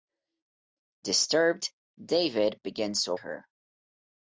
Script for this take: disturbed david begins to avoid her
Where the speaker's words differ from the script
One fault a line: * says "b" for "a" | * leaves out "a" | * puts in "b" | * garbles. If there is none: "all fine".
* leaves out "avoid"